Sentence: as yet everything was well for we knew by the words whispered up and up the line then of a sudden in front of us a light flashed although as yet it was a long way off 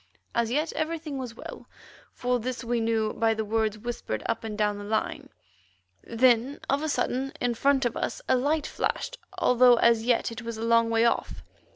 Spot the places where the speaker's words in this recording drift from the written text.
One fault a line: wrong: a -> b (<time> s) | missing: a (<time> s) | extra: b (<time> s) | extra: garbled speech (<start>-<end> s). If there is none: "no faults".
extra: this (2.4 s)
wrong: up -> down (4.6 s)